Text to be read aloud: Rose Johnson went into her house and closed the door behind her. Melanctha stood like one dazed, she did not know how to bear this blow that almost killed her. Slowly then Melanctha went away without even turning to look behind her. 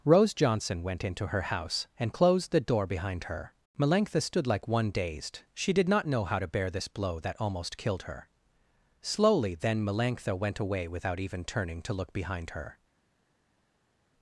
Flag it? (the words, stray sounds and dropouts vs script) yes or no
no